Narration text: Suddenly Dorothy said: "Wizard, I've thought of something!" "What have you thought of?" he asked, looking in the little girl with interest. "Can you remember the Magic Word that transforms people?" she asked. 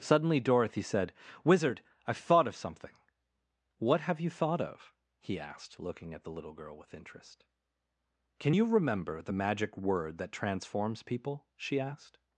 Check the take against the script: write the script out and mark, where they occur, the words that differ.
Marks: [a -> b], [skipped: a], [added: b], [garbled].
Suddenly Dorothy said: "Wizard, I've thought of something!" "What have you thought of?" he asked, looking [in -> at] the little girl with interest. "Can you remember the Magic Word that transforms people?" she asked.